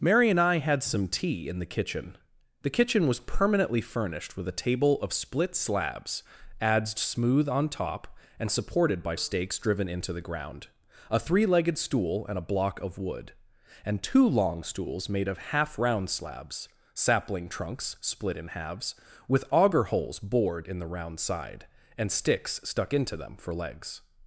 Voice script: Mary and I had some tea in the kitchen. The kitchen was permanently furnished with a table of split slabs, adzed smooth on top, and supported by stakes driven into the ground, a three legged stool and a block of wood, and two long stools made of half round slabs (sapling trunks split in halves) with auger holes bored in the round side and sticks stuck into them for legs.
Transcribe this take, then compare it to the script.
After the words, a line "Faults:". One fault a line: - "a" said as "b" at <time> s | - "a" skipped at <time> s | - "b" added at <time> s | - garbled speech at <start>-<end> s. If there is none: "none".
Mary and I had some tea in the kitchen. The kitchen was permanently furnished with a table of split slabs, adzed smooth on top, and supported by stakes driven into the ground, a three legged stool and a block of wood, and two long stools made of half round slabs (sapling trunks split in halves) with auger holes bored in the round side and sticks stuck into them for legs.
Faults:
none